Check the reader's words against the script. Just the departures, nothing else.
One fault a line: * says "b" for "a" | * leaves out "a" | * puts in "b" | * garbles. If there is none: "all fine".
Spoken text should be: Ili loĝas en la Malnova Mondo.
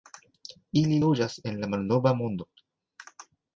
all fine